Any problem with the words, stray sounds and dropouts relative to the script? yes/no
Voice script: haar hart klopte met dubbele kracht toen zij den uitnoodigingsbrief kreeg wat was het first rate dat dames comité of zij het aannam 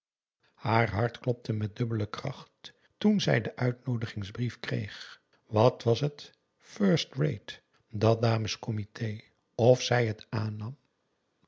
no